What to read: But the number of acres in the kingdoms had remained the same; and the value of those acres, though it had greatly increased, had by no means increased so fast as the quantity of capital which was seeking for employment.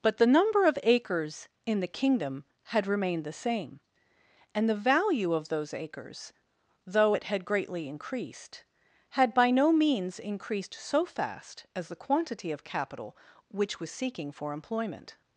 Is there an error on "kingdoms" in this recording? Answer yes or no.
yes